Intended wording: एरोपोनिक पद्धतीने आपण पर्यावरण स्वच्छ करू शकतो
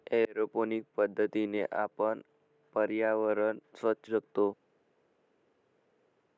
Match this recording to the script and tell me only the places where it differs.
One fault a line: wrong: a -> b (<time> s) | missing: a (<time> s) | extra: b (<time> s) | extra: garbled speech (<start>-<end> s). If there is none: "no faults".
missing: करू (4.1 s)